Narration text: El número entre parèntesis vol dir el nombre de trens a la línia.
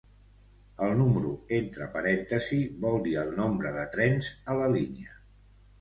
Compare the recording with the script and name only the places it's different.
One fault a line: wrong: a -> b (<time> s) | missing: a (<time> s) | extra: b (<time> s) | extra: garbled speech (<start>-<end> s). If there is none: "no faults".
no faults